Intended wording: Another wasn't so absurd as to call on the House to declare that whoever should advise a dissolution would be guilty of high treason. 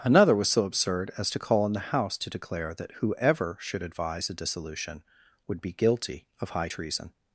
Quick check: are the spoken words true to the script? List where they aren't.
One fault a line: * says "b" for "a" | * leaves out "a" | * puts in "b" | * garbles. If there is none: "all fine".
* says "was" for "wasn't"